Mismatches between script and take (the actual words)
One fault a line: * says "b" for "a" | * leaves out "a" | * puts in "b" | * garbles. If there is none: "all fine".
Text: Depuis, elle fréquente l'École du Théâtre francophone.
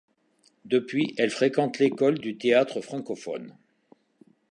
all fine